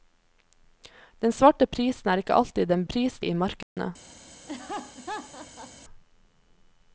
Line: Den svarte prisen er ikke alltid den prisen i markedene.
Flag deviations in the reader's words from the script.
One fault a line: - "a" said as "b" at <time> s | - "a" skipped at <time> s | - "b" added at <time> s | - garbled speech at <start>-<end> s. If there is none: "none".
none